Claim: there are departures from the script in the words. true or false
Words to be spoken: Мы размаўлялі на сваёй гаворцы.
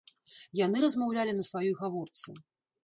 true